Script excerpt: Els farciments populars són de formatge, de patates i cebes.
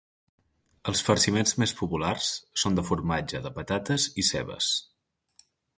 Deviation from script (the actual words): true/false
true